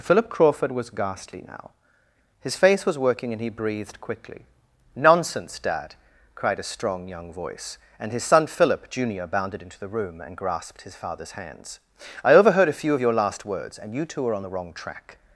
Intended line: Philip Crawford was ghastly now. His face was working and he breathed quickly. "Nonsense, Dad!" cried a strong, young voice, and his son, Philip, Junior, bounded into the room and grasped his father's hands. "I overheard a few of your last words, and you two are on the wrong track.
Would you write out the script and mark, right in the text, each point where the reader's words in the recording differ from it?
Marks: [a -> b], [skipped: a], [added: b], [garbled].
Philip Crawford was ghastly now. His face was working and he breathed quickly. "Nonsense, Dad!" cried a strong, young voice, and his son, Philip, Junior, bounded into the room and grasped his father's hands. "I overheard a few of your last words, and you two are on the wrong track.